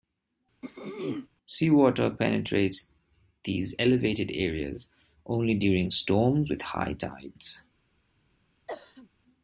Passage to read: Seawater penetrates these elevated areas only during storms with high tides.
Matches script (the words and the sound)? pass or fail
fail